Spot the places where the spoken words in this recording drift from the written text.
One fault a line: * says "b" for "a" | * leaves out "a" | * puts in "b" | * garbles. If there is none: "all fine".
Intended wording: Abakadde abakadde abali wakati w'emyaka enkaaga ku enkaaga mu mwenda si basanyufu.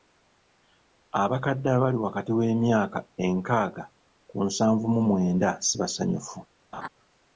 * leaves out "abakadde"
* says "nsanvu" for "enkaaga"